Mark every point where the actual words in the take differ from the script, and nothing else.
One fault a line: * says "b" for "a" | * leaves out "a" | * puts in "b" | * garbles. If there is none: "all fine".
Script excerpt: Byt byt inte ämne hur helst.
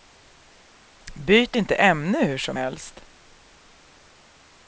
* leaves out "byt"
* puts in "som"